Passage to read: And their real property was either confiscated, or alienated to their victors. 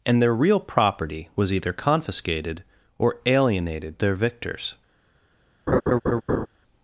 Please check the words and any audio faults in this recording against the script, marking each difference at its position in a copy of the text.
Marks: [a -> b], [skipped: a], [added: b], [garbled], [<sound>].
And their real property was either confiscated, or alienated [skipped: to] their victors. [laugh]